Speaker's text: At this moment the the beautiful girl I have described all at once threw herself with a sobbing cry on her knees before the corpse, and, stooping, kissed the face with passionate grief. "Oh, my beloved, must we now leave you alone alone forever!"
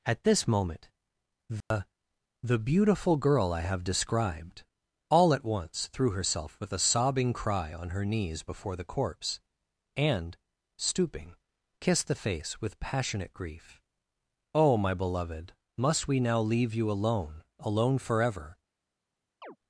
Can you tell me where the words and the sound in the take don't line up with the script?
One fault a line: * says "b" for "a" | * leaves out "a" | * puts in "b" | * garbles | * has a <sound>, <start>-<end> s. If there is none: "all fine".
* has a dropout, 1.6-1.7 s
* has a chirp, 19.4-19.6 s